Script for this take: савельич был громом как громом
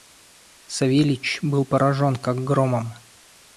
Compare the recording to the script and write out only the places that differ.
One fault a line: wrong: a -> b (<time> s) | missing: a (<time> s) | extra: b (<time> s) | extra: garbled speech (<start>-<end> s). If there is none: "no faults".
wrong: громом -> поражен (1.6 s)